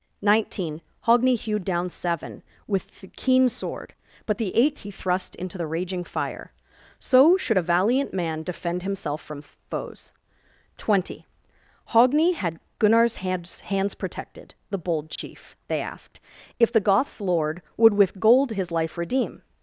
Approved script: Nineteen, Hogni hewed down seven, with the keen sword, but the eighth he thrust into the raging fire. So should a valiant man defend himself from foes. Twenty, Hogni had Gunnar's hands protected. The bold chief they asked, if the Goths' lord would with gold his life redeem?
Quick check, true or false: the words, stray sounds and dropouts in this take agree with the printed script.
false